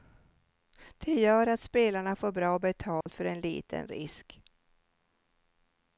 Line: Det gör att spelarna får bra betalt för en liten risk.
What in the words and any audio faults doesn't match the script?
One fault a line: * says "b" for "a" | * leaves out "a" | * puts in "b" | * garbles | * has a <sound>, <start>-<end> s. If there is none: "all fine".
* has a dropout, 3.0-3.1 s